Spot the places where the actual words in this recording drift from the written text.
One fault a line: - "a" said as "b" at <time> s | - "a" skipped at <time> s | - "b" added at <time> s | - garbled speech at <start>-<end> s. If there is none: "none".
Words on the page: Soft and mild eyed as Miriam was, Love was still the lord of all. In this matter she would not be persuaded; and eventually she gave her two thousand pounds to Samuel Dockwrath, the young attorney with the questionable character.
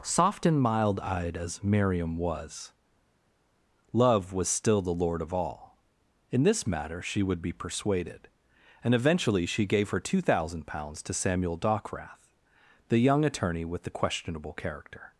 - "not" skipped at 7.4 s